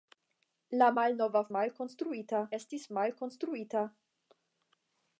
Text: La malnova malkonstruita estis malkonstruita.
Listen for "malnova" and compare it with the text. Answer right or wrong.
right